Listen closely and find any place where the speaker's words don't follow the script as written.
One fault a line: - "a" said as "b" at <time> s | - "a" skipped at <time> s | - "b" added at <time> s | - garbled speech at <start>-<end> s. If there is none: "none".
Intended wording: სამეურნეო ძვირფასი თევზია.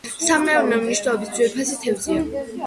- "მნიშვნელობის" added at 0.8 s